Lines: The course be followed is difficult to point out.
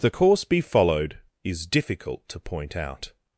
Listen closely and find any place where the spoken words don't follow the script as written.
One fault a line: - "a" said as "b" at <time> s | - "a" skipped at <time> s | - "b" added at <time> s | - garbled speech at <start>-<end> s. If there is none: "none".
none